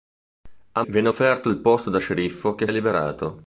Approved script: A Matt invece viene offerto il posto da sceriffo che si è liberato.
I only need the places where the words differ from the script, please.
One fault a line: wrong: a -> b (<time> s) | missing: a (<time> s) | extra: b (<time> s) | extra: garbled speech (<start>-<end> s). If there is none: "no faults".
missing: Matt invece (0.8 s)
missing: si (2.7 s)